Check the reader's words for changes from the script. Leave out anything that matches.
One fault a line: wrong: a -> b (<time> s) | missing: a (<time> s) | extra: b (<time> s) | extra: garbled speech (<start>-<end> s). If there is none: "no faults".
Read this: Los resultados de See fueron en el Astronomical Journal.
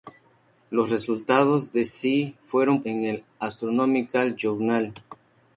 no faults